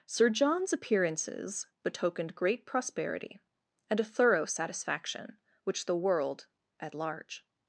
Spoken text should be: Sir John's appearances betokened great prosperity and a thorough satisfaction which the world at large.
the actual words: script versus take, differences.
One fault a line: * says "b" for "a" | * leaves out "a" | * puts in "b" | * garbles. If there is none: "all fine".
all fine